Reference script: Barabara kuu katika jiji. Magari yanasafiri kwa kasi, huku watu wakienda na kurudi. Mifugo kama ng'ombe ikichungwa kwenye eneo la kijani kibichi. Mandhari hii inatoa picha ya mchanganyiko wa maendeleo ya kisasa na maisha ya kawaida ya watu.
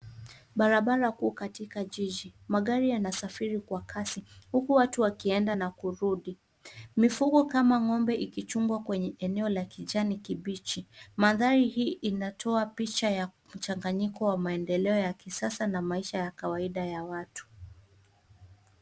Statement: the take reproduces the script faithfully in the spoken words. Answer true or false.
true